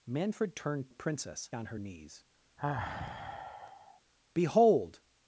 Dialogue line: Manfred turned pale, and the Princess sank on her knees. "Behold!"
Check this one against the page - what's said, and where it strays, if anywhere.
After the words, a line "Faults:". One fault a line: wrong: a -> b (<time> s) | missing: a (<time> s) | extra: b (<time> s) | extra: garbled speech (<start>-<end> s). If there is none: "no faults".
Manfred turned the Princess on her knees. "Behold!"
Faults:
missing: pale and (0.9 s)
missing: sank (1.5 s)